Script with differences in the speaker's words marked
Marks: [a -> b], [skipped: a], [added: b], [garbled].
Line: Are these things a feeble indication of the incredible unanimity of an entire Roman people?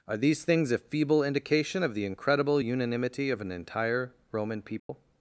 Are these things a feeble indication of the incredible unanimity of an entire Roman people?